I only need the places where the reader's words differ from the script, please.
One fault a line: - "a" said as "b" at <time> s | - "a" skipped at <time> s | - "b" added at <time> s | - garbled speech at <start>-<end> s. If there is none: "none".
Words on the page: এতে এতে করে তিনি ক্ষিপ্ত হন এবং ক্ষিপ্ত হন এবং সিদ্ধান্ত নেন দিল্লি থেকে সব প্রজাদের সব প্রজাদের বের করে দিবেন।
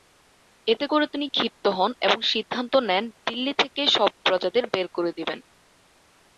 - "এতে" skipped at 0.8 s
- "ক্ষিপ্ত হন এবং" skipped at 2.2 s
- "সব প্রজাদের" skipped at 4.6 s